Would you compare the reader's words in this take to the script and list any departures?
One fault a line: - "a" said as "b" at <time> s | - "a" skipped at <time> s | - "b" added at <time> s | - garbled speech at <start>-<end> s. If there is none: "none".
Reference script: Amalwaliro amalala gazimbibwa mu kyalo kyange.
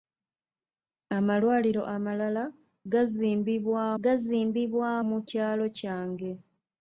- "gazimbibwa" added at 4.0 s